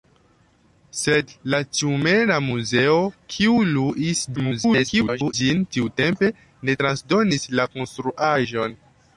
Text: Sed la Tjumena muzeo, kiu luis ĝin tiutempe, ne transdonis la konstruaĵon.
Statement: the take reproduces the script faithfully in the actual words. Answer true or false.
false